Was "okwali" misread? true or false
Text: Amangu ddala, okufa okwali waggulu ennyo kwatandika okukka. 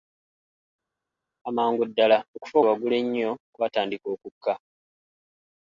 true